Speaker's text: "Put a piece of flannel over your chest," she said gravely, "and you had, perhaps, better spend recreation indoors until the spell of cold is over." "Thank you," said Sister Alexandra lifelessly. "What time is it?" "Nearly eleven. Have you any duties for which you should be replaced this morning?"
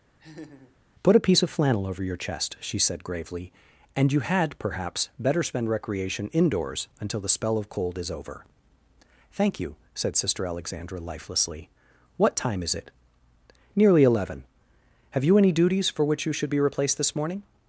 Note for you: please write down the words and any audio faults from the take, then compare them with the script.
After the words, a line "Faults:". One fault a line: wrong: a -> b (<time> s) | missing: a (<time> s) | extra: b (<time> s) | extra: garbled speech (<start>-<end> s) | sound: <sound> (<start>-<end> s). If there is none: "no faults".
"Put a piece of flannel over your chest," she said gravely, "and you had, perhaps, better spend recreation indoors until the spell of cold is over." "Thank you," said Sister Alexandra lifelessly. "What time is it?" "Nearly eleven. Have you any duties for which you should be replaced this morning?"
Faults:
sound: laugh (0.2-0.8 s)